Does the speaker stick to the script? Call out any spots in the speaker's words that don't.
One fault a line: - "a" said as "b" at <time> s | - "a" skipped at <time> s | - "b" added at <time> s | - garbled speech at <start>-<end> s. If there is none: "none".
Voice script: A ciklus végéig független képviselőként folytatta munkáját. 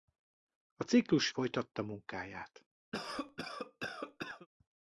- "végéig független képviselőként" skipped at 1.3 s